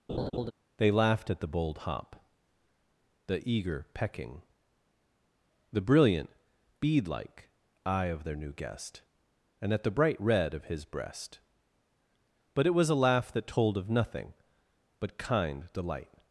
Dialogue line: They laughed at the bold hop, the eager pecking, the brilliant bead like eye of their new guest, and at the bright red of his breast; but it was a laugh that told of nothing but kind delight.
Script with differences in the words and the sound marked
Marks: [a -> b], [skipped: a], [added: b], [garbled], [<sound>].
[laugh] They laughed at the bold hop, the eager pecking, the brilliant bead like eye of their new guest, and at the bright red of his breast; but it was a laugh that told of nothing but kind delight.